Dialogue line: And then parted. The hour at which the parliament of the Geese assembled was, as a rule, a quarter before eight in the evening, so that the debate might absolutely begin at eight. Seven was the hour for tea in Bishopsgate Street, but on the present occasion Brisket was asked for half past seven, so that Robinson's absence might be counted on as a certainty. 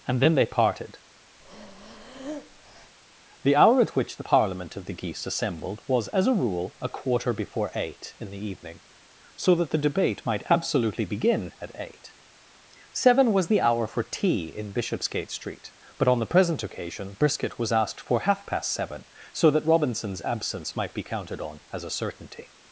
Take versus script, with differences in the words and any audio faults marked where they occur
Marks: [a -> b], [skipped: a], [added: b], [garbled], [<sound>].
And then [added: they] parted. [breath] The hour at which the parliament of the Geese assembled was, as a rule, a quarter before eight in the evening, so that the debate might absolutely begin at eight. Seven was the hour for tea in Bishopsgate Street, but on the present occasion Brisket was asked for half past seven, so that Robinson's absence might be counted on as a certainty.